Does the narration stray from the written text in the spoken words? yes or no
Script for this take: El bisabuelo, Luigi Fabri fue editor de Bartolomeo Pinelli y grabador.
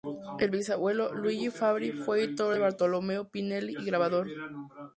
no